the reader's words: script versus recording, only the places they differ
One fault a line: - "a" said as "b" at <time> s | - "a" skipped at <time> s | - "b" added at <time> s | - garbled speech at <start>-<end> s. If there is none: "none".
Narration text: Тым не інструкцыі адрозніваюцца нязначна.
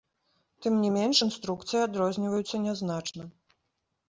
- "менш" added at 0.9 s